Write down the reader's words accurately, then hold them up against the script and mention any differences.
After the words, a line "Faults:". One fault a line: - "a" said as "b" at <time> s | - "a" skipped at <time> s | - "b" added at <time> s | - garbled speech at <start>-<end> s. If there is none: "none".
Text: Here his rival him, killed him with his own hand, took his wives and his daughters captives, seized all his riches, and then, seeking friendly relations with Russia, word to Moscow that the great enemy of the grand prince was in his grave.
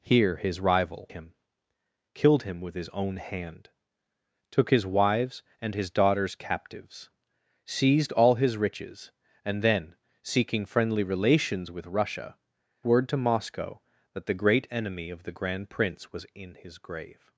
Here his rival him, killed him with his own hand, took his wives and his daughters captives, seized all his riches, and then, seeking friendly relations with Russia, word to Moscow that the great enemy of the grand prince was in his grave.
Faults:
none